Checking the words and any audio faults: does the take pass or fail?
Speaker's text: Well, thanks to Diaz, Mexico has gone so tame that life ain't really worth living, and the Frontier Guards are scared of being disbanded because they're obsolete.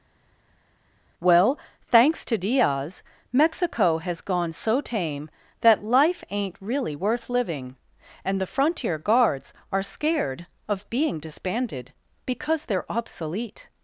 pass